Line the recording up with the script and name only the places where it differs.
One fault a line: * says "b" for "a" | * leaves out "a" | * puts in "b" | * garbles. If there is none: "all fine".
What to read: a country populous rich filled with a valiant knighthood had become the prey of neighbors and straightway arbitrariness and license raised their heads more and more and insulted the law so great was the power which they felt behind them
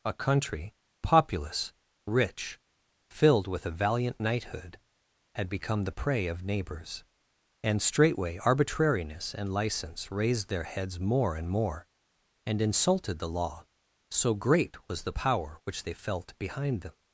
all fine